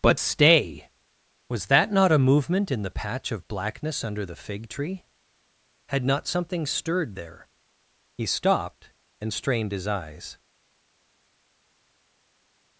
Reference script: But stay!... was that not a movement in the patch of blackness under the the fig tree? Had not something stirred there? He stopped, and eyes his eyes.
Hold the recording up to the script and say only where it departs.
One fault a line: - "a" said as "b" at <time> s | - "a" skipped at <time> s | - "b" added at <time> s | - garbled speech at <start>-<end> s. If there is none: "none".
- "the" skipped at 4.4 s
- "eyes" said as "strained" at 9.3 s